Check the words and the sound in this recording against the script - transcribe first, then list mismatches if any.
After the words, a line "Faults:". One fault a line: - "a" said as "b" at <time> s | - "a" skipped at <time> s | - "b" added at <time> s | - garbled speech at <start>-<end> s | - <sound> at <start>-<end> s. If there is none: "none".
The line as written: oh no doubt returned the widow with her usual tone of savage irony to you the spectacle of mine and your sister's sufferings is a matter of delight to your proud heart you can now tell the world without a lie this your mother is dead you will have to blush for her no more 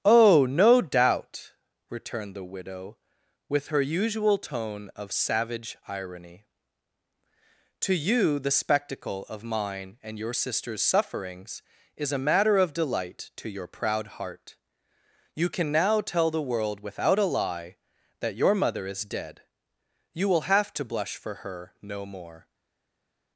oh no doubt returned the widow with her usual tone of savage irony to you the spectacle of mine and your sister's sufferings is a matter of delight to your proud heart you can now tell the world without a lie that your mother is dead you will have to blush for her no more
Faults:
- "this" said as "that" at 18.2 s